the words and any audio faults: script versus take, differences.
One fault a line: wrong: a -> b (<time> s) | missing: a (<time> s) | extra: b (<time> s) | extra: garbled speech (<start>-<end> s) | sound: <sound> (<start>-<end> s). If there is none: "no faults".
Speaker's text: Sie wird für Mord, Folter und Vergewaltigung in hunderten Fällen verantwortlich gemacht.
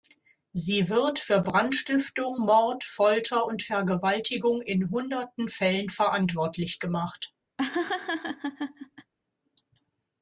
extra: Brandstiftung (1.4 s)
sound: laugh (7.6-9.1 s)